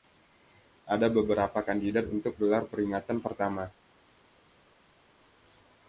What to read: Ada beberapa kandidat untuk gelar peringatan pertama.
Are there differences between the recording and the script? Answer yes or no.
no